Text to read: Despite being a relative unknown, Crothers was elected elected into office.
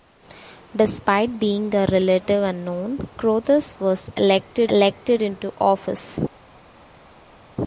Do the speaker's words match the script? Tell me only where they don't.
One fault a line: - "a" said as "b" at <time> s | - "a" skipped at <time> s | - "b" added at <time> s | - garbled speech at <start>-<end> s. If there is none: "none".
none